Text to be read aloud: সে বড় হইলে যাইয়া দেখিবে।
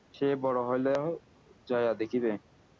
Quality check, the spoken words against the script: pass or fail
pass